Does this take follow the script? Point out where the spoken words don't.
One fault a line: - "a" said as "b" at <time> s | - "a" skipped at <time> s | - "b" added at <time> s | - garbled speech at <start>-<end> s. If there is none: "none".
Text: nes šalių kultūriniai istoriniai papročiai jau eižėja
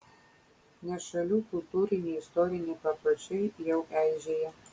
none